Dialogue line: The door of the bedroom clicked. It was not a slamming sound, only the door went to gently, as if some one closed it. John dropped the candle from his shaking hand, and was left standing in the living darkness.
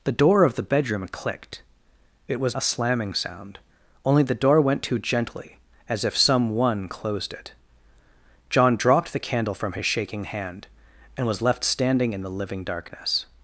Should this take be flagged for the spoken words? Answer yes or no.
yes